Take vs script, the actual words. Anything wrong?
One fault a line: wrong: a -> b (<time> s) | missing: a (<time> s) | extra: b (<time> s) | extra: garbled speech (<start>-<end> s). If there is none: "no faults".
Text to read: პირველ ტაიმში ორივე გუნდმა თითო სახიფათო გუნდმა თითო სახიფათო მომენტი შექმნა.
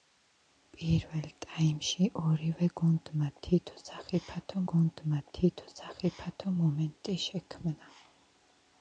no faults